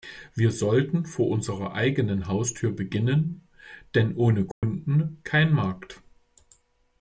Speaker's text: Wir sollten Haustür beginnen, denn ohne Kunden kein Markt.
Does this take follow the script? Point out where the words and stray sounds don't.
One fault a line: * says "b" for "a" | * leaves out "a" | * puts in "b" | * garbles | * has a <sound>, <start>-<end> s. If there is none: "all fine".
* puts in "vor unserer eigenen"
* has a dropout, 4.5-4.6 s